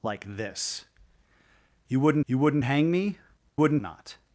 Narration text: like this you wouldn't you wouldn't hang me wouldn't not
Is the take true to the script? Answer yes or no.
yes